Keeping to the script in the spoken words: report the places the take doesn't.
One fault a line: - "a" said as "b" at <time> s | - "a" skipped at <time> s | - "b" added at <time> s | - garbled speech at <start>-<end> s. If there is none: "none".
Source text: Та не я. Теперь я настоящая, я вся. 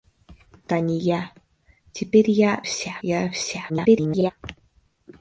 - "настоящая" said as "вся" at 2.6 s
- garbled speech at 3.7-4.3 s